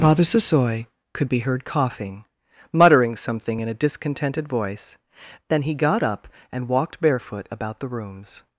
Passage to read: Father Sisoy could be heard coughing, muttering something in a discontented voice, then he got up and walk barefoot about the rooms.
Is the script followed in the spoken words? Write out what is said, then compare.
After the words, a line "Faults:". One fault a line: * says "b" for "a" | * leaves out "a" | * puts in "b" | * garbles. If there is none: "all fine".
Father Sisoy could be heard coughing, muttering something in a discontented voice, then he got up and walked barefoot about the rooms.
Faults:
* says "walked" for "walk"